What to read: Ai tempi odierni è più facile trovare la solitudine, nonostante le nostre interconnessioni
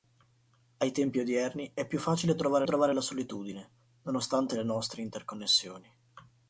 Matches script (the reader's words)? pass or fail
fail